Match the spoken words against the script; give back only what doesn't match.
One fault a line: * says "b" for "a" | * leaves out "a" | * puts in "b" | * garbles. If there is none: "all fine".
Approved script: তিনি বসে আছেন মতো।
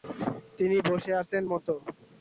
all fine